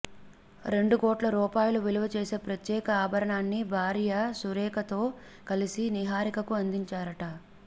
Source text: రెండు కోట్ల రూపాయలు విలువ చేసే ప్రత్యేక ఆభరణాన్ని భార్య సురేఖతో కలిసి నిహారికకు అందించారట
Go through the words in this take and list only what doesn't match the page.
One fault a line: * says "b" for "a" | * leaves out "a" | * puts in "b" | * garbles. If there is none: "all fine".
all fine